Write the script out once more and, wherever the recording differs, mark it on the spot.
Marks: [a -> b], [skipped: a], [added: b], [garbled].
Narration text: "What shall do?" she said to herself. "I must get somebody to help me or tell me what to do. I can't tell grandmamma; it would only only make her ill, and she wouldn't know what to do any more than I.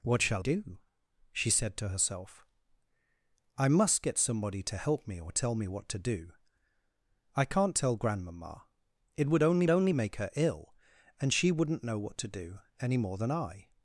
"What shall do?" she said to herself. "I must get somebody to help me or tell me what to do. I can't tell grandmamma; it would only only make her ill, and she wouldn't know what to do any more than I.